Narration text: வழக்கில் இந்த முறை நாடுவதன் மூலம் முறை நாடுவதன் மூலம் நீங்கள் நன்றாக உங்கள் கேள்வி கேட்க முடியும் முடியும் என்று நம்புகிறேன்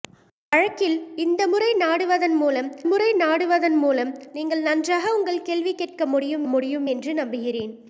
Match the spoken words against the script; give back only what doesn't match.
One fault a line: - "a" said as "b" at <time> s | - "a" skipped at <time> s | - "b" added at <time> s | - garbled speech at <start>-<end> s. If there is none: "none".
none